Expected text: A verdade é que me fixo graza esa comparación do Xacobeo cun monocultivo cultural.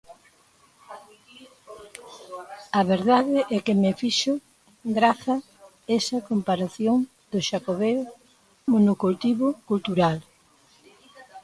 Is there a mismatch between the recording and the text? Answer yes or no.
yes